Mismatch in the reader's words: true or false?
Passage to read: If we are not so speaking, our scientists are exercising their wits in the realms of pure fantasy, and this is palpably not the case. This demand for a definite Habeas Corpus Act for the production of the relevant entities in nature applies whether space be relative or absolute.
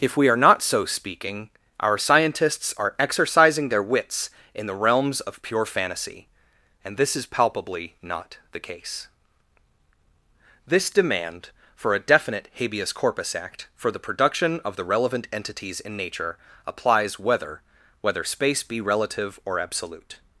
true